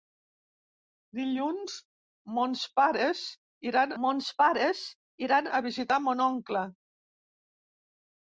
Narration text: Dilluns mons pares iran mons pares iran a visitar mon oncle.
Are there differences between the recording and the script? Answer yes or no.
no